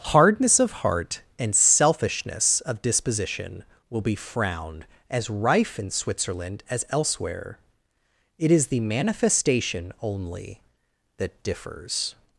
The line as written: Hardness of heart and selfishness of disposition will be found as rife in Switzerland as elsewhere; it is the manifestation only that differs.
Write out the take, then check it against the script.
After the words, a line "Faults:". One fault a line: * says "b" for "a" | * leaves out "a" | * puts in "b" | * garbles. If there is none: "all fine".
Hardness of heart and selfishness of disposition will be frowned as rife in Switzerland as elsewhere; it is the manifestation only that differs.
Faults:
* says "frowned" for "found"